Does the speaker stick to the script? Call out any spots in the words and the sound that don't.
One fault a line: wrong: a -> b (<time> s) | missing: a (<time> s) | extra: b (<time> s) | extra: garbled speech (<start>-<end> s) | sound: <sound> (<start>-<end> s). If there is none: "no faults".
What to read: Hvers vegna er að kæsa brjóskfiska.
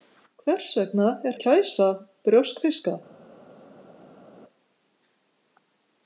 no faults